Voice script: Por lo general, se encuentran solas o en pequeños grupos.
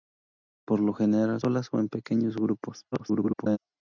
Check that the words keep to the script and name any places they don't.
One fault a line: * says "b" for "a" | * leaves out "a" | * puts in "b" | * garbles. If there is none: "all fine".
* leaves out "se encuentran"
* garbles